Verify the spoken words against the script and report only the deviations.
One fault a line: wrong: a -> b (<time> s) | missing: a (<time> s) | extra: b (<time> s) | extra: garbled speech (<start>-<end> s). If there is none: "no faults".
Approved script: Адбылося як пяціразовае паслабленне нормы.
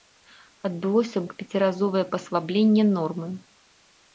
no faults